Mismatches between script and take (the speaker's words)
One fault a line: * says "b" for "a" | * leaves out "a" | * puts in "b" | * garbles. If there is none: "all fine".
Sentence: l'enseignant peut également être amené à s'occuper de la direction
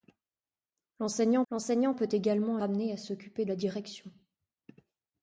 * puts in "l'enseignant"
* leaves out "être"
* leaves out "de"